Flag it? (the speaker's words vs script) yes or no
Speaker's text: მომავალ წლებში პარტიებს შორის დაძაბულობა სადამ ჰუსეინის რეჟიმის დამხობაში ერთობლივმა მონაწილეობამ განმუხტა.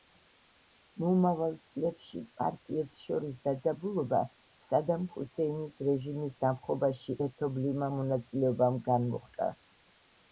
no